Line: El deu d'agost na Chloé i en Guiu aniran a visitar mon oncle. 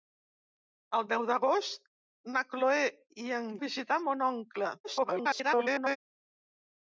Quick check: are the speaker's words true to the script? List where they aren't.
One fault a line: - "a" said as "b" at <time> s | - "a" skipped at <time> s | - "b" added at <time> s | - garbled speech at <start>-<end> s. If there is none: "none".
- "Guiu aniran" skipped at 3.5 s
- garbled speech at 4.8-6.0 s